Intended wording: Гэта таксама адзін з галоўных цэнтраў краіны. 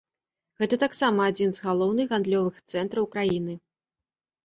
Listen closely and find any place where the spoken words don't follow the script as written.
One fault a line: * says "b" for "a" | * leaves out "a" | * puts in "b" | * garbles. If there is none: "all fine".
* puts in "гандлёвых"